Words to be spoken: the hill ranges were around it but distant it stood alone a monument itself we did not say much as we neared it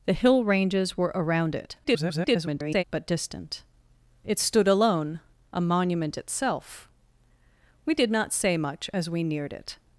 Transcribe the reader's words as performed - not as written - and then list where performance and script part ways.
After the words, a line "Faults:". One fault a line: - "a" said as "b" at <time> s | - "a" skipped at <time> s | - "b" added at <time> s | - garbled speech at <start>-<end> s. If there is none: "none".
the hill ranges were around it [garbled] but distant it stood alone a monument itself we did not say much as we neared it
Faults:
- garbled speech at 1.8-2.8 s